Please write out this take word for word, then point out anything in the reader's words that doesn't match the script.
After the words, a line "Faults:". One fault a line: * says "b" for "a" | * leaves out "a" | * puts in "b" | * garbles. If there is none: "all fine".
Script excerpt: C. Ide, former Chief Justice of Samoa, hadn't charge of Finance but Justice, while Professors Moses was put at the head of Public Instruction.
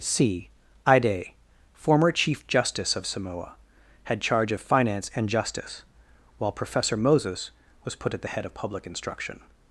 C. Ide, former Chief Justice of Samoa, had charge of Finance and Justice, while Professor Moses was put at the head of Public Instruction.
Faults:
* says "had" for "hadn't"
* says "and" for "but"
* says "Professor" for "Professors"